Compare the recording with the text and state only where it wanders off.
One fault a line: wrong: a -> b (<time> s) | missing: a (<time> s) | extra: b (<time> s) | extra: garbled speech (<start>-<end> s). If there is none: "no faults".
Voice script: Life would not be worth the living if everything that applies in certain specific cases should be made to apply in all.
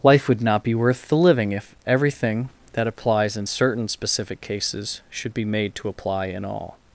no faults